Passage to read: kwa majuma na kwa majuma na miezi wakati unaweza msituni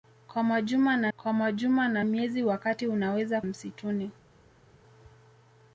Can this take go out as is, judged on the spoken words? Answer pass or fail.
pass